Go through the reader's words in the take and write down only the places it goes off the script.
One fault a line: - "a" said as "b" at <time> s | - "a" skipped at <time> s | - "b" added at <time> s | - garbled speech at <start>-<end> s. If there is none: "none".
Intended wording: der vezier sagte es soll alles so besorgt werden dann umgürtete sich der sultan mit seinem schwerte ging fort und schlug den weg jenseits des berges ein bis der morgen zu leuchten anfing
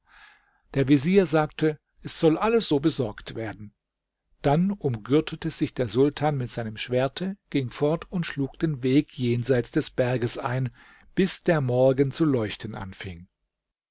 none